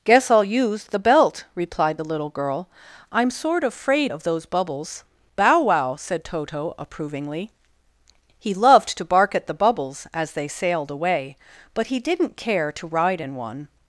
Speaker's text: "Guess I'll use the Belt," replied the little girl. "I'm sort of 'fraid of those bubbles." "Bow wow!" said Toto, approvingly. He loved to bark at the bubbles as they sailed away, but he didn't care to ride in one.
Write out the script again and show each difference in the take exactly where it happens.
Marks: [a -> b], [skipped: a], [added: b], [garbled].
"Guess I'll use the Belt," replied the little girl. "I'm sort of 'fraid of those bubbles." "Bow wow!" said Toto, approvingly. He loved to bark at the bubbles as they sailed away, but he didn't care to ride in one.